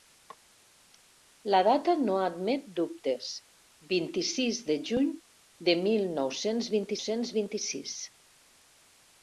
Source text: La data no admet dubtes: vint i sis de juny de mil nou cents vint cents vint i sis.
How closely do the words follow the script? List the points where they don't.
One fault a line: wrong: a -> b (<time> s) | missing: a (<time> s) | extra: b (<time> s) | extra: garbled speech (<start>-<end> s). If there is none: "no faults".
no faults